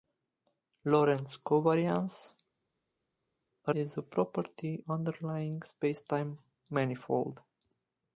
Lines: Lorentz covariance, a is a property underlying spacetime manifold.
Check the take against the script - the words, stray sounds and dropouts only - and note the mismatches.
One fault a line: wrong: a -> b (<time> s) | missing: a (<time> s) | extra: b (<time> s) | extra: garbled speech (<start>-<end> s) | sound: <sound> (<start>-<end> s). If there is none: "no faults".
no faults